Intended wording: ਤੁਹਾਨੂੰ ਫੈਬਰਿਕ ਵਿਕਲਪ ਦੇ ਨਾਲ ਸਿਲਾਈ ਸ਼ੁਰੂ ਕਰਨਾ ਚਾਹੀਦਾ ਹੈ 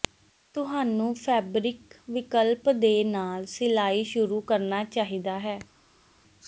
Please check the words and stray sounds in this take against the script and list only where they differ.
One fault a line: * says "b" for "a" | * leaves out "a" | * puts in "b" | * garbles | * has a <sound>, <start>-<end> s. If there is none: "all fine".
all fine